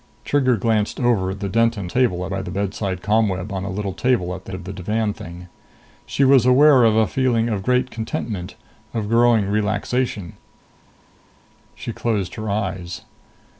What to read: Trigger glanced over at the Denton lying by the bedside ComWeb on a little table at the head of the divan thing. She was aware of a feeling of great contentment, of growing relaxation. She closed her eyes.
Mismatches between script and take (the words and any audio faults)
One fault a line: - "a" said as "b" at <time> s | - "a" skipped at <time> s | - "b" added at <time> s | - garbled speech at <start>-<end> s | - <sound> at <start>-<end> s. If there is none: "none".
- "lying" said as "table" at 1.9 s
- "head" skipped at 4.5 s